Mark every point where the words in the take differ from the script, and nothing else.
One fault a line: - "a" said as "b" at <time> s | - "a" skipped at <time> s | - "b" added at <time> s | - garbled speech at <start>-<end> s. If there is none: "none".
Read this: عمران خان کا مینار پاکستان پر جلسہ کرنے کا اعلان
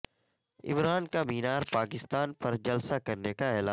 - "خان" skipped at 1.1 s